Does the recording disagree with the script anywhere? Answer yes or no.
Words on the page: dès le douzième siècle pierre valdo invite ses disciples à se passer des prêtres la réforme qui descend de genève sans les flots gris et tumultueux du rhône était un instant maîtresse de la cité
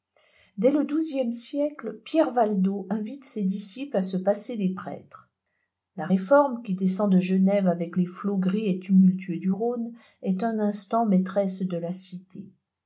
yes